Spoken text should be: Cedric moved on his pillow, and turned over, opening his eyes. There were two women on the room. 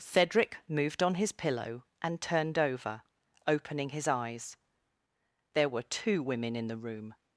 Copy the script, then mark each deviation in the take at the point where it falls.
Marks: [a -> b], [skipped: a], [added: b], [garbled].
Cedric moved on his pillow, and turned over, opening his eyes. There were two women [on -> in] the room.